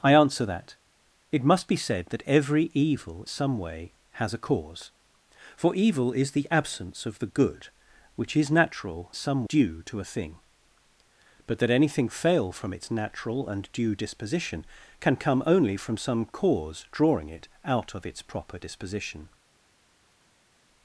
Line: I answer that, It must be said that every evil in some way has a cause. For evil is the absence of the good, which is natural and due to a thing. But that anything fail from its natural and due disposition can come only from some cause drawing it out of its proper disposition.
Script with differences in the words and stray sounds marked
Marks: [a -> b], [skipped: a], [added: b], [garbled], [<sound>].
I answer that, It must be said that every evil [skipped: in] some way has a cause. For evil is the absence of the good, which is natural [and -> some] due to a thing. But that anything fail from its natural and due disposition can come only from some cause drawing it out of its proper disposition.